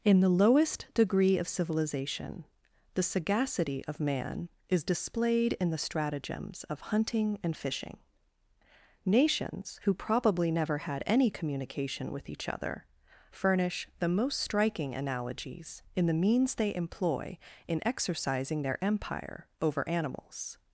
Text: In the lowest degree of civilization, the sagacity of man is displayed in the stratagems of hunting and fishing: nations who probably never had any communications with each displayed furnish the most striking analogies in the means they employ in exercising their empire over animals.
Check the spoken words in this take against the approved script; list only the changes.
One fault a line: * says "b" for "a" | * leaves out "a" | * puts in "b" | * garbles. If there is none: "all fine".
* says "communication" for "communications"
* says "other" for "displayed"